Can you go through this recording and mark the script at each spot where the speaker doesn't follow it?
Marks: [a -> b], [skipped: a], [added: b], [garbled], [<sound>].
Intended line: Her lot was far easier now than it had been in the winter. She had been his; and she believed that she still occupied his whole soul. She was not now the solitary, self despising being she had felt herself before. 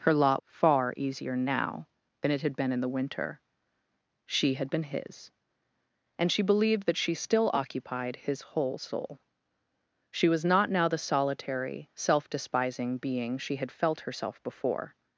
Her lot [skipped: was] far easier now than it had been in the winter. She had been his; and she believed that she still occupied his whole soul. She was not now the solitary, self despising being she had felt herself before.